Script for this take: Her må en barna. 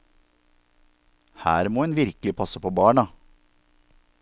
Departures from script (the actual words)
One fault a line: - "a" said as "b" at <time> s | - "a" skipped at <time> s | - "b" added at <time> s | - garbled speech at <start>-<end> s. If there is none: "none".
- "virkelig passe på" added at 2.0 s